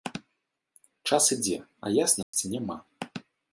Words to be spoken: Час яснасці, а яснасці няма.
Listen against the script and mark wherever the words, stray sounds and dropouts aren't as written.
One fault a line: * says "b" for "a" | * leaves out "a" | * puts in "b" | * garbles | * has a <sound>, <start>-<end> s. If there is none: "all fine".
* says "ідзе" for "яснасці"
* has a dropout, 2.2-2.3 s